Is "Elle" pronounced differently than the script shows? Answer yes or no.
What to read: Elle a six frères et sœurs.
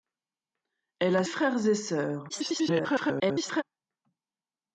no